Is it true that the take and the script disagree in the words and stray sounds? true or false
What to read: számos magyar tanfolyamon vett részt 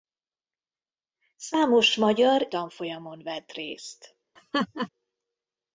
true